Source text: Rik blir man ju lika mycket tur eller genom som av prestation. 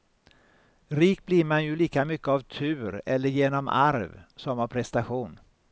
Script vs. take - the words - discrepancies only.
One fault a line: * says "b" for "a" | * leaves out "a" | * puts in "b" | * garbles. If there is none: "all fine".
* puts in "av"
* puts in "arv"